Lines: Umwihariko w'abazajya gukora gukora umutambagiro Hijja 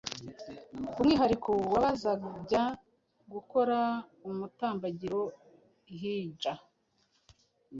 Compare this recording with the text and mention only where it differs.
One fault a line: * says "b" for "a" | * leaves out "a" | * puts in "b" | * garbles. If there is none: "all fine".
* leaves out "gukora"